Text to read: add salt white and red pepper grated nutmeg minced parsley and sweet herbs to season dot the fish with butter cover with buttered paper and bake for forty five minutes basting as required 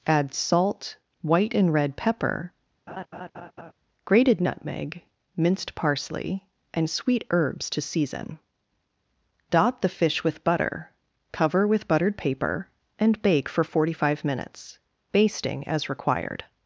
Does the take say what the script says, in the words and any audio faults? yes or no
no